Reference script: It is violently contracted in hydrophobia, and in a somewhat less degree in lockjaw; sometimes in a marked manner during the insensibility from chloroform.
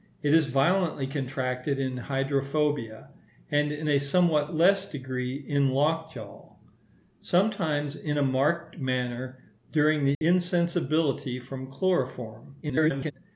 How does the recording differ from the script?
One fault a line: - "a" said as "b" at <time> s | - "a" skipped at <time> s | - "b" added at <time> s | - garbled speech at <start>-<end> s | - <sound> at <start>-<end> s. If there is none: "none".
- dropout at 10.1-10.2 s
- garbled speech at 12.6-13.1 s